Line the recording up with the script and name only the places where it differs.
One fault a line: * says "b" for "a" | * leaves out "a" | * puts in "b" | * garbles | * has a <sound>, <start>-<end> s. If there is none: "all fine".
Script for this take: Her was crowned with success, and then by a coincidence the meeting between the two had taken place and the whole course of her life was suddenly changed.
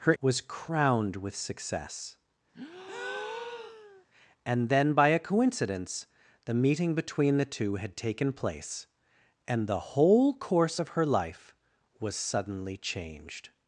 * has a breath, 2.5-4.1 s